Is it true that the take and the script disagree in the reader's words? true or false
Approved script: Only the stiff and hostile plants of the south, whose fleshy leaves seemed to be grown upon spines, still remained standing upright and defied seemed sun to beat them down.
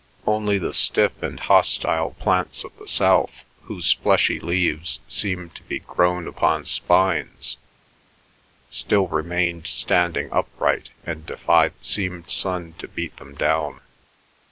false